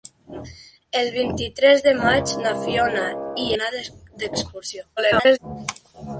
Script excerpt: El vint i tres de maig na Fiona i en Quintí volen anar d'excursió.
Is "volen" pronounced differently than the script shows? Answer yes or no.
yes